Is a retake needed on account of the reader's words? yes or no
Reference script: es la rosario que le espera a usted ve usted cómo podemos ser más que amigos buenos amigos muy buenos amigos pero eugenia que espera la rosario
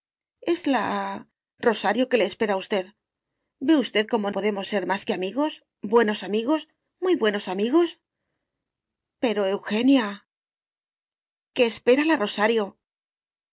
no